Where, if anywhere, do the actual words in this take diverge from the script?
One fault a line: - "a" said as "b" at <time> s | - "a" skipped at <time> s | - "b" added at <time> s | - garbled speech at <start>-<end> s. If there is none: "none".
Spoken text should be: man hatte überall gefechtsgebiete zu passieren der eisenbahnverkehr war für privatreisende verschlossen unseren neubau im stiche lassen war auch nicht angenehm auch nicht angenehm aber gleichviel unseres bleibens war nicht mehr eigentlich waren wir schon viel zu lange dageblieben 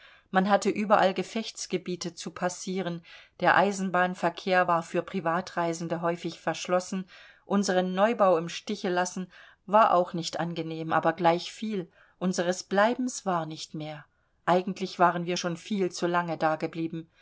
- "häufig" added at 6.0 s
- "auch nicht angenehm" skipped at 10.9 s